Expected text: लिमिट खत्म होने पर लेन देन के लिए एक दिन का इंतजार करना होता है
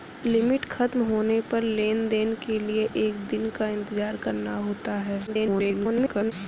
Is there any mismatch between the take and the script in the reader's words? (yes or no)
yes